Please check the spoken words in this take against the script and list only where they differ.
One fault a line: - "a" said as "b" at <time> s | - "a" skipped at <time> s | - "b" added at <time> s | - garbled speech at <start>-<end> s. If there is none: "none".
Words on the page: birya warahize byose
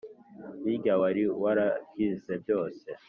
- "wari" added at 1.0 s